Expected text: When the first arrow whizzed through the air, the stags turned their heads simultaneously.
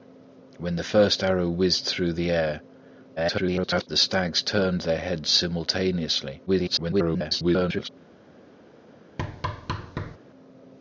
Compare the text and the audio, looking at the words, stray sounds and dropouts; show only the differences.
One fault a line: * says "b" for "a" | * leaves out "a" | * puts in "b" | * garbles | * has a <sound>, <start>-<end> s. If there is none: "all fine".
* garbles
* garbles
* has a thud, 9.2-10.2 s